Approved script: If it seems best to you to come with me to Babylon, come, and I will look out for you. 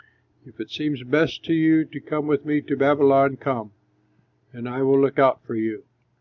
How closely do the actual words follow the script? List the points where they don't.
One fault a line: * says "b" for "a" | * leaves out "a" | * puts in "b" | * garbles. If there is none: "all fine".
all fine